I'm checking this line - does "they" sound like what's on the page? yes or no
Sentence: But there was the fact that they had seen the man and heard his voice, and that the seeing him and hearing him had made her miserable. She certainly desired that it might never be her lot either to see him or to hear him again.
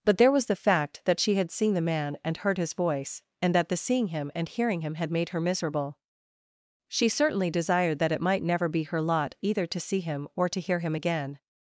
no